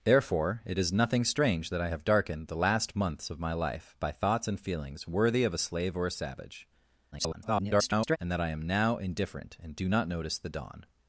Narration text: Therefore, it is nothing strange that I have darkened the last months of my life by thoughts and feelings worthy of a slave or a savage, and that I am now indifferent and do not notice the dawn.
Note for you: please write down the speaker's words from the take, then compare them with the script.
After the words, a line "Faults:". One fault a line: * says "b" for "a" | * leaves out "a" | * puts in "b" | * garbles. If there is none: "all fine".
Therefore, it is nothing strange that I have darkened the last months of my life by thoughts and feelings worthy of a slave or a savage, [garbled] and that I am now indifferent and do not notice the dawn.
Faults:
* garbles